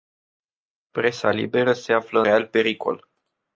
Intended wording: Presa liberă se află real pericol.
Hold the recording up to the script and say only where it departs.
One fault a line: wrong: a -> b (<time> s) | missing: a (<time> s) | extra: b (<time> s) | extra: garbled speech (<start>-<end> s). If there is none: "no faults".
no faults